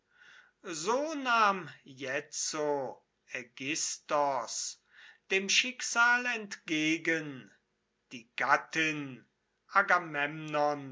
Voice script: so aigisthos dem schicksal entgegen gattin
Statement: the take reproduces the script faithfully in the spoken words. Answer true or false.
false